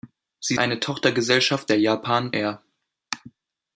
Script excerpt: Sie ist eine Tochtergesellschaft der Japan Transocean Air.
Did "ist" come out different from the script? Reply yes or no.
yes